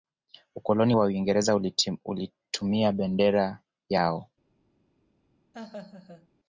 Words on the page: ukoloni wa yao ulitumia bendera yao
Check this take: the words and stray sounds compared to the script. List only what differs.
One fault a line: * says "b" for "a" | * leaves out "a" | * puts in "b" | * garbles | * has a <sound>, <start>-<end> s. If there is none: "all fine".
* says "uingereza" for "yao"
* has a laugh, 5.5-6.3 s